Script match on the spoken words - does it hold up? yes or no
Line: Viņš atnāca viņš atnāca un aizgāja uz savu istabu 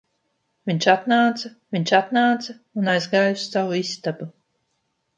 yes